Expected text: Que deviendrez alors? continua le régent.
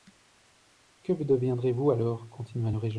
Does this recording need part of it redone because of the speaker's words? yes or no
yes